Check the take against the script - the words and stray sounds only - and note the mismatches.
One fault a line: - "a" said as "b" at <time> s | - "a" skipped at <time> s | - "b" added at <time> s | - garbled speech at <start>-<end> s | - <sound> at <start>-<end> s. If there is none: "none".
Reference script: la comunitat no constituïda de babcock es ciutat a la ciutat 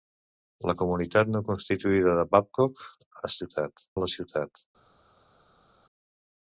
none